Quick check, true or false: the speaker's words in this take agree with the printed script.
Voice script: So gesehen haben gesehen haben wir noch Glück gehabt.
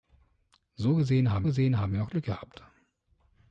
true